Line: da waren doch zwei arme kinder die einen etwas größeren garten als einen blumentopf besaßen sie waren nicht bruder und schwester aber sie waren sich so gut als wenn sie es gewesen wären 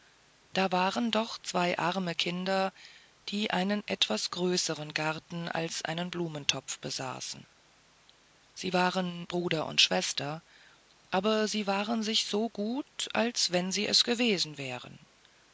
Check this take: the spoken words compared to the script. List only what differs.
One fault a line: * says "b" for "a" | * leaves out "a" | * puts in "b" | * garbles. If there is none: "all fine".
* leaves out "nicht"